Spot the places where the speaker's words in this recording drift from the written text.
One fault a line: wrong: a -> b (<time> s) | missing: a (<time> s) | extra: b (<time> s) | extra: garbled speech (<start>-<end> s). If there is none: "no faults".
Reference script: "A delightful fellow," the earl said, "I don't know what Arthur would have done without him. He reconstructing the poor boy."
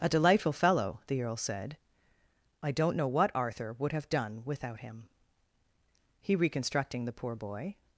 no faults